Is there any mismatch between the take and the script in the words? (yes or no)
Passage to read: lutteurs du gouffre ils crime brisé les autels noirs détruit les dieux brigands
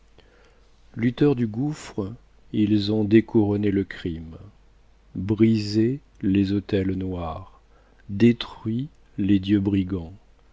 yes